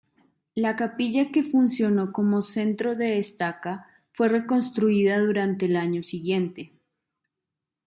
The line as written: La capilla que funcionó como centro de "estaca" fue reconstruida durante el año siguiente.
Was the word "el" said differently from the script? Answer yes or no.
no